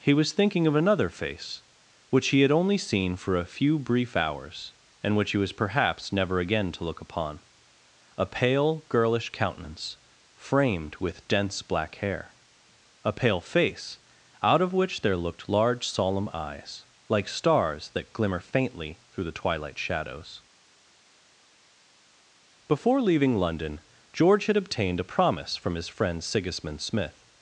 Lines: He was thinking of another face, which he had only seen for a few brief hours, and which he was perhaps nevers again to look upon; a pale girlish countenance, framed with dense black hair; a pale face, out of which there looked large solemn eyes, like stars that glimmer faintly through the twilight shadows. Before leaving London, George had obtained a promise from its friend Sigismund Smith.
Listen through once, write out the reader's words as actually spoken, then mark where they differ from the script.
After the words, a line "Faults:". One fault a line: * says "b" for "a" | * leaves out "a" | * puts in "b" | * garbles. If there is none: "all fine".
He was thinking of another face, which he had only seen for a few brief hours, and which he was perhaps never again to look upon; a pale girlish countenance, framed with dense black hair; a pale face, out of which there looked large solemn eyes, like stars that glimmer faintly through the twilight shadows. Before leaving London, George had obtained a promise from his friend Sigismund Smith.
Faults:
* says "never" for "nevers"
* says "his" for "its"